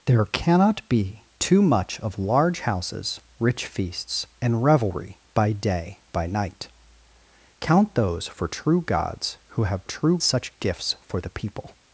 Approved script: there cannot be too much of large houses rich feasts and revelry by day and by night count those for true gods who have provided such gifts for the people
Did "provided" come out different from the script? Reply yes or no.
yes